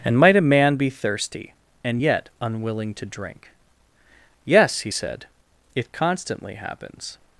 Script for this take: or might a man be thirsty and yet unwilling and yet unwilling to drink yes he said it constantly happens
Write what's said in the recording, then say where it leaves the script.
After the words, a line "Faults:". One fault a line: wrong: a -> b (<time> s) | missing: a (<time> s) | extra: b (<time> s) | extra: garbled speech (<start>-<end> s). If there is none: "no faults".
and might a man be thirsty and yet unwilling to drink yes he said it constantly happens
Faults:
wrong: or -> and (0.0 s)
missing: and yet unwilling (2.9 s)